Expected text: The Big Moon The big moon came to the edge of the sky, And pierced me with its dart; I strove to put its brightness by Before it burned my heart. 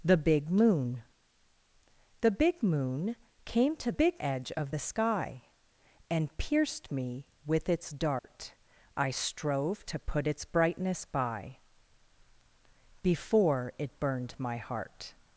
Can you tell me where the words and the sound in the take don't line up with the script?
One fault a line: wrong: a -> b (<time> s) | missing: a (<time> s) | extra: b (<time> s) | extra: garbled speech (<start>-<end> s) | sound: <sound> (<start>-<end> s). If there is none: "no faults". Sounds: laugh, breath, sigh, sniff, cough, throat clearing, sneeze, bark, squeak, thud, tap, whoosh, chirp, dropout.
wrong: the -> big (3.9 s)
sound: dropout (8.2-8.2 s)